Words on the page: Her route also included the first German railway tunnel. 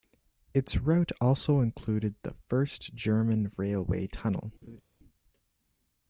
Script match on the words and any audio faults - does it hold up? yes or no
no